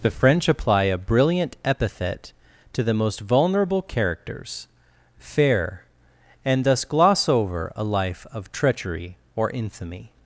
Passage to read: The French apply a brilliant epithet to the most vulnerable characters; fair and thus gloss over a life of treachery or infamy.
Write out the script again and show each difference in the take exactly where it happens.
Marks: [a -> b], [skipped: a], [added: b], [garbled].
The French apply a brilliant epithet to the most vulnerable characters; fair and thus gloss over a life of treachery or infamy.